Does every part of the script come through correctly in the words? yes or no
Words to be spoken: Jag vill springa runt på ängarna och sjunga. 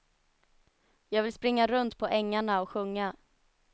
yes